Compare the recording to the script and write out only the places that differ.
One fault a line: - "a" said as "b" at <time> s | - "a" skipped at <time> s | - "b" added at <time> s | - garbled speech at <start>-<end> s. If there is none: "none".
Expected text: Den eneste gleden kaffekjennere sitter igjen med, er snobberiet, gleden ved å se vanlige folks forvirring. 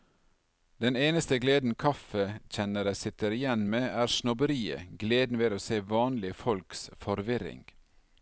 none